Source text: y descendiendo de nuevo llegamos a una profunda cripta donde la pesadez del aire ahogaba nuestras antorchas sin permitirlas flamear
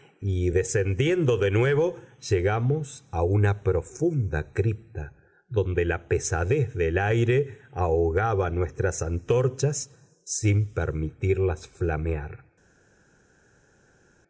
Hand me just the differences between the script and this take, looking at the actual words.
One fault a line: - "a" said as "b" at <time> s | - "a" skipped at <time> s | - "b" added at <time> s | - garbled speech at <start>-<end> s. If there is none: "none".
none